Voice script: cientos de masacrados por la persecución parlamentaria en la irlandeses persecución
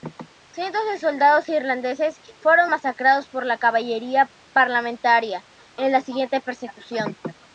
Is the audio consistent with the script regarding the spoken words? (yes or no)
no